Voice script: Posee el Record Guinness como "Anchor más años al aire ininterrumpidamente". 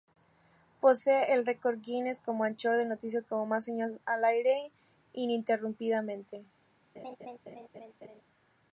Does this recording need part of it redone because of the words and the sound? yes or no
yes